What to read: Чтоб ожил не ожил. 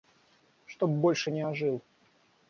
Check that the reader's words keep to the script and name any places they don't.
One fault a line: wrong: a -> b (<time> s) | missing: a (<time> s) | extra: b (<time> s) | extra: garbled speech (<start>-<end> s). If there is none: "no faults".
wrong: ожил -> больше (0.9 s)